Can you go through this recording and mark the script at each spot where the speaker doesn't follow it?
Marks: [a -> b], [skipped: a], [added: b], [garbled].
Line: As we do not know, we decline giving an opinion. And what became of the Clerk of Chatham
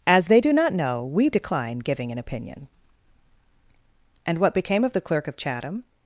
As [we -> they] do not know, we decline giving an opinion. And what became of the Clerk of Chatham